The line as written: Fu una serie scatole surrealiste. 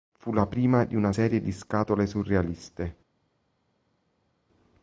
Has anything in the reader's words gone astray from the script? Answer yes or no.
yes